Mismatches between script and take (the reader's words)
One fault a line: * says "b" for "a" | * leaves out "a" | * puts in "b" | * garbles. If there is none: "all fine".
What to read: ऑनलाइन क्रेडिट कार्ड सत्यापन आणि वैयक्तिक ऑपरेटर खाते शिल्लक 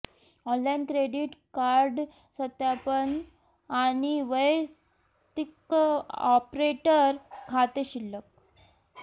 all fine